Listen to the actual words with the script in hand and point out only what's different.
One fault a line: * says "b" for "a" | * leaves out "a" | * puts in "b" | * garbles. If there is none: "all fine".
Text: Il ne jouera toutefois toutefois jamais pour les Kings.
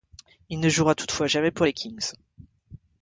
* leaves out "toutefois"